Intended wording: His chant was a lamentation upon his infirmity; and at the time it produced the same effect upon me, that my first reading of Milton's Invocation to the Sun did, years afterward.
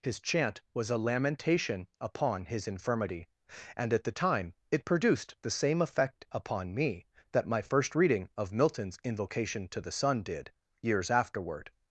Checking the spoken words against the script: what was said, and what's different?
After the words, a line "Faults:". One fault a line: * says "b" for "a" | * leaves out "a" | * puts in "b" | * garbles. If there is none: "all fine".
His chant was a lamentation upon his infirmity; and at the time it produced the same effect upon me, that my first reading of Milton's Invocation to the Sun did, years afterward.
Faults:
all fine